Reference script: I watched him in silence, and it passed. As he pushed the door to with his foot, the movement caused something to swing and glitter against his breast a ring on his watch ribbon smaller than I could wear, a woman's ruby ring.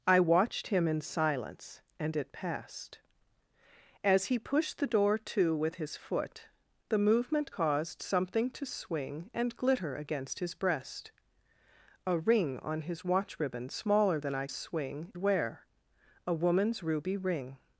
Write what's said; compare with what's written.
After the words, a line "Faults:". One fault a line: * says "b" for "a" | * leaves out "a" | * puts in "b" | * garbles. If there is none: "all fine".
I watched him in silence, and it passed. As he pushed the door to with his foot, the movement caused something to swing and glitter against his breast a ring on his watch ribbon smaller than I swing wear, a woman's ruby ring.
Faults:
* says "swing" for "could"